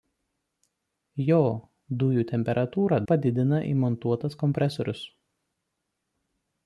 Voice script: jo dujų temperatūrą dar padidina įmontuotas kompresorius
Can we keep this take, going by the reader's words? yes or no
no